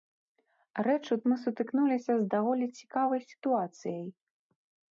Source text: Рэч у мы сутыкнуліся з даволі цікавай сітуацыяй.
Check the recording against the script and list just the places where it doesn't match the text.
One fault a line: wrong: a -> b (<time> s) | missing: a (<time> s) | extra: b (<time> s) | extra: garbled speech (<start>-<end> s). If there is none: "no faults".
no faults